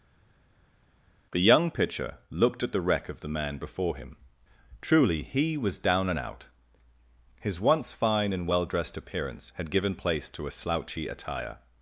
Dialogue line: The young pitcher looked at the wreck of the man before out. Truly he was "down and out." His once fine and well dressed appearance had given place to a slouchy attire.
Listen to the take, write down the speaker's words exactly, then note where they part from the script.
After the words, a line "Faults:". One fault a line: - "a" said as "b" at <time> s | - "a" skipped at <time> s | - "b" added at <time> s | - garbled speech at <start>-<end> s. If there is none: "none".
The young pitcher looked at the wreck of the man before him. Truly he was "down and out." His once fine and well dressed appearance had given place to a slouchy attire.
Faults:
- "out" said as "him" at 3.9 s